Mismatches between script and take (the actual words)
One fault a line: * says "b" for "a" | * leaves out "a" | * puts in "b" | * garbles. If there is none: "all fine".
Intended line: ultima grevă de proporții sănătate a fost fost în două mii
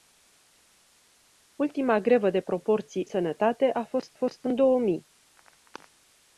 all fine